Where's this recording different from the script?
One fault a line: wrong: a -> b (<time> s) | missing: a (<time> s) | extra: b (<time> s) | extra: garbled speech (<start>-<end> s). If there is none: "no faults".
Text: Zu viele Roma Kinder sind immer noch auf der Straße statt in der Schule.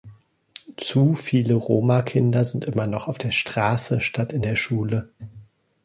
no faults